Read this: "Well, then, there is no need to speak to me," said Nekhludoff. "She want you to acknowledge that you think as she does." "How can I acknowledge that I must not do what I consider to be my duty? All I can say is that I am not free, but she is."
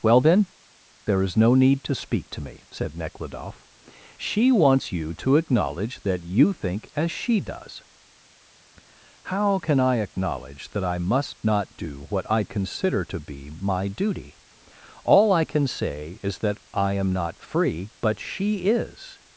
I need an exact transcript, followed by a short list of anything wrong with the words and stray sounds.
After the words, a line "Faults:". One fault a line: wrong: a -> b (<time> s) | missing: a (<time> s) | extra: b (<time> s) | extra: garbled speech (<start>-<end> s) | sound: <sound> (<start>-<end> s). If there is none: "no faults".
"Well, then, there is no need to speak to me," said Nekhludoff. "She wants you to acknowledge that you think as she does." "How can I acknowledge that I must not do what I consider to be my duty? All I can say is that I am not free, but she is."
Faults:
wrong: want -> wants (4.5 s)